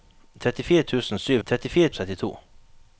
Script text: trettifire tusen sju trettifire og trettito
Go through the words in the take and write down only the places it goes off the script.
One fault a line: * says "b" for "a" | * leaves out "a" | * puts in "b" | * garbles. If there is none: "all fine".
all fine